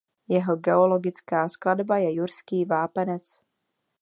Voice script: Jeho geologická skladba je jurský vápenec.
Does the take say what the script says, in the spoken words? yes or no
yes